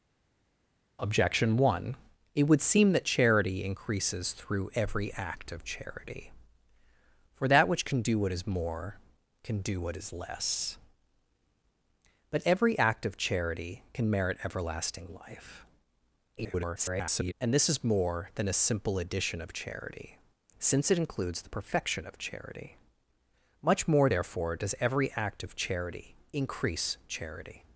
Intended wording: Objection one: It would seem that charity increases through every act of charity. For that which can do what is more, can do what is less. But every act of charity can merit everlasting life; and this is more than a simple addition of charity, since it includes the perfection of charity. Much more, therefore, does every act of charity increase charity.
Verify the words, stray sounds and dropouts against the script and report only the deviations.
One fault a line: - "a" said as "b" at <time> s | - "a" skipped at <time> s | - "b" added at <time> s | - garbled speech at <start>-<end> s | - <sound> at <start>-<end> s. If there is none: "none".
- garbled speech at 16.4-17.3 s